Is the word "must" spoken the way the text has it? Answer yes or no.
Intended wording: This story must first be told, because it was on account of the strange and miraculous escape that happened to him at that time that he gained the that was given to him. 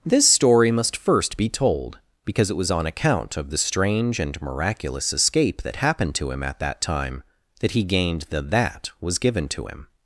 yes